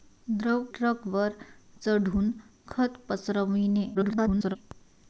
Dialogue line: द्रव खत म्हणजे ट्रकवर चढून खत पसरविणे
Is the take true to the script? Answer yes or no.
no